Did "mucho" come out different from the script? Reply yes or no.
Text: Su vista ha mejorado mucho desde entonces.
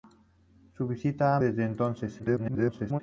yes